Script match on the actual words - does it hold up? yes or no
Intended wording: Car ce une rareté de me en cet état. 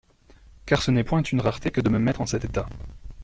no